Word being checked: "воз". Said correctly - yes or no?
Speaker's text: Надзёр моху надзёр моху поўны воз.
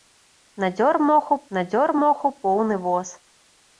yes